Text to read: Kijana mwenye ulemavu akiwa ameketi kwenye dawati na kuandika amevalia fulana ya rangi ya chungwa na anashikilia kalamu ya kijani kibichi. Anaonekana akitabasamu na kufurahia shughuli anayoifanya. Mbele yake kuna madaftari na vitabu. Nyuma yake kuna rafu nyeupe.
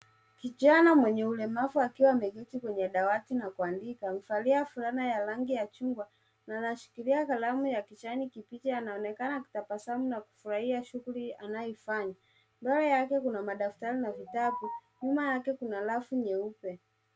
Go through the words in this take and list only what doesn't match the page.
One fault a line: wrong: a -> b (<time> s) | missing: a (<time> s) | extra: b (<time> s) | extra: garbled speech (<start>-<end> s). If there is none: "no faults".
no faults